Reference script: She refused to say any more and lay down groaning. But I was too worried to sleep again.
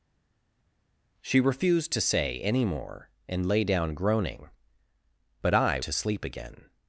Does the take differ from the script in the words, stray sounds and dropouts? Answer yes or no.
yes